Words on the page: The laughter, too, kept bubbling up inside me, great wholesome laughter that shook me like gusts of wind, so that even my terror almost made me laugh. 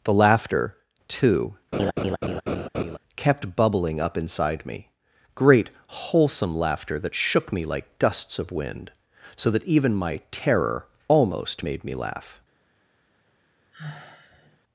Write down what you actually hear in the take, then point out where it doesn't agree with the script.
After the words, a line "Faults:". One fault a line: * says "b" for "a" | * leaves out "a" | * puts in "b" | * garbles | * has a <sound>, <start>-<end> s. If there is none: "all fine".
The laughter, too, kept bubbling up inside me, great wholesome laughter that shook me like gusts of wind, so that even my terror almost made me laugh.
Faults:
* has a laugh, 1.7-3.0 s
* has a sigh, 13.7-14.6 s